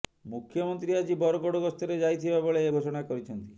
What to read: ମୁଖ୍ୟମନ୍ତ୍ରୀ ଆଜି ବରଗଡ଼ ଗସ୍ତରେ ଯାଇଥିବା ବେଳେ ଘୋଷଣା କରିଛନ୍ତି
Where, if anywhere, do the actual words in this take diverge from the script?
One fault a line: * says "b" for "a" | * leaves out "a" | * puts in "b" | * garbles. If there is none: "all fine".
all fine